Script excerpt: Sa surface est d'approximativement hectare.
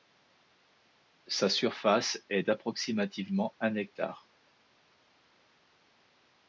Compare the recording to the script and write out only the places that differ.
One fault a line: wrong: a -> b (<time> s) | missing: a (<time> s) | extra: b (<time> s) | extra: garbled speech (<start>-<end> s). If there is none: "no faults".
extra: un (3.6 s)